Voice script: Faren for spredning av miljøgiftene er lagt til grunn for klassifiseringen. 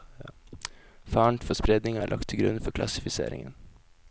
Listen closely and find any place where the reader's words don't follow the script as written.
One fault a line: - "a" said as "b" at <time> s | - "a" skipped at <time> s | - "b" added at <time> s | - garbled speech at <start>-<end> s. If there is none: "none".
- "av miljøgiftene" skipped at 2.0 s